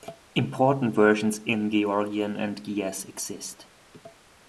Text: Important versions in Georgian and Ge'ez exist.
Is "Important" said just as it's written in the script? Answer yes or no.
yes